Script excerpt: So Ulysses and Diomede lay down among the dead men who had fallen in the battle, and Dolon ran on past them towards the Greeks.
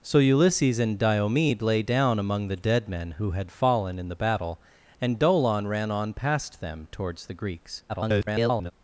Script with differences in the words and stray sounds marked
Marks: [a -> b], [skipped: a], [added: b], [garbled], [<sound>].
So Ulysses and Diomede lay down among the dead men who had fallen in the battle, and Dolon ran on past them towards the Greeks. [garbled]